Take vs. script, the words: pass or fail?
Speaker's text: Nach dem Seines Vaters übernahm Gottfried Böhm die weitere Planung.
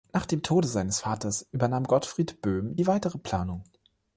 fail